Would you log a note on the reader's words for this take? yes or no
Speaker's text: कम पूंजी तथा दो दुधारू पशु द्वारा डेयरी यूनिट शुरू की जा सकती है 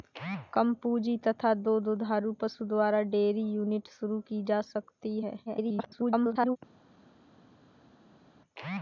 yes